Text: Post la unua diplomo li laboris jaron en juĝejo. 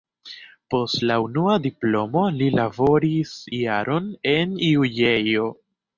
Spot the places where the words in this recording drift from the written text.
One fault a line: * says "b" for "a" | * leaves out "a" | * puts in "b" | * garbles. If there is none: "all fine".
all fine